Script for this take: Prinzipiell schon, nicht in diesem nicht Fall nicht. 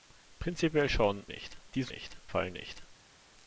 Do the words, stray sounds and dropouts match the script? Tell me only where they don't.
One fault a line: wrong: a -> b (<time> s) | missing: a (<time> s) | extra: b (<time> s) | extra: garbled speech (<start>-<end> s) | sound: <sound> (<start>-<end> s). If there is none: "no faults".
no faults